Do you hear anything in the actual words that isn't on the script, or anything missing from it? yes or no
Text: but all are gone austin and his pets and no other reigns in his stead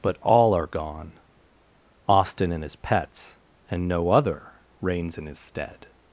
no